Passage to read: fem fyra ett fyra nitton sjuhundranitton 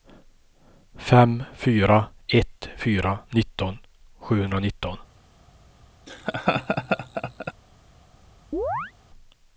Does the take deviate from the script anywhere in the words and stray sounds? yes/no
yes